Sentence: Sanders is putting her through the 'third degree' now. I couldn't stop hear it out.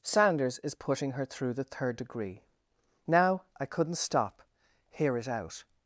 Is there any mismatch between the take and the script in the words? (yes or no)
no